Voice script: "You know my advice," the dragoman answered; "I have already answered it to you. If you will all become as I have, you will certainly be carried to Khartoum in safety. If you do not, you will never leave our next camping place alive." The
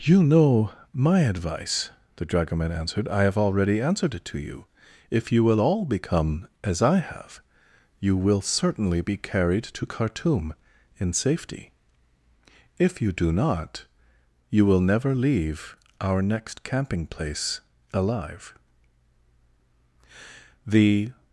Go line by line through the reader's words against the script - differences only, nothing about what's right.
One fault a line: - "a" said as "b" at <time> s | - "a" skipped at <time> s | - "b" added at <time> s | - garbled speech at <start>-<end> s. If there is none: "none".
none